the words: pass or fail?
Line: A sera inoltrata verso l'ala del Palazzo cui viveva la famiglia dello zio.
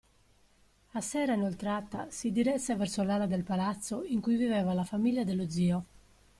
fail